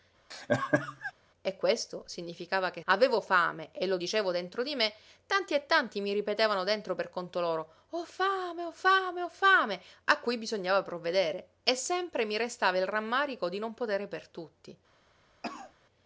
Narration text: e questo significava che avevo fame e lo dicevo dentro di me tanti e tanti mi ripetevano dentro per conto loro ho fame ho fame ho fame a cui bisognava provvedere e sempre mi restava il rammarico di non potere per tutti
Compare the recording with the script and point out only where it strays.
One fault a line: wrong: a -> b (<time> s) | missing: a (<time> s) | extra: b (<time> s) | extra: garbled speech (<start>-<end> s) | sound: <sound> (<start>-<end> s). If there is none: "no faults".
sound: laugh (0.3-1.1 s)
sound: cough (15.4-15.7 s)